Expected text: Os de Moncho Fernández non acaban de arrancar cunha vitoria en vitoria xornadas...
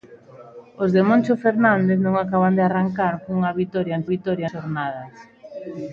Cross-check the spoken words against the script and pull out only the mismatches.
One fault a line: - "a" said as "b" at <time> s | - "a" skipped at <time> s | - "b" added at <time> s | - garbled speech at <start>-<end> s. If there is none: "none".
none